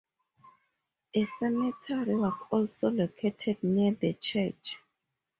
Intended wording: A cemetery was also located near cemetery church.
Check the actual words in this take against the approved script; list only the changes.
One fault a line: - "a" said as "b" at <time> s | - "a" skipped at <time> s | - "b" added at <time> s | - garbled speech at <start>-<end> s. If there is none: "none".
- "cemetery" said as "the" at 3.9 s